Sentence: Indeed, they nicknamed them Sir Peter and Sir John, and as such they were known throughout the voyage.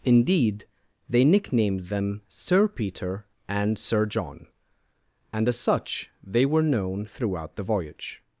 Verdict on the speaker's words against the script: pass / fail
pass